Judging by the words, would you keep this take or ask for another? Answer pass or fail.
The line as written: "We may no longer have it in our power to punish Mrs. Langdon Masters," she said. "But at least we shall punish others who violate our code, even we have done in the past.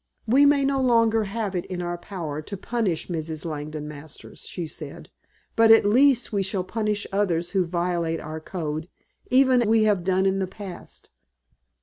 pass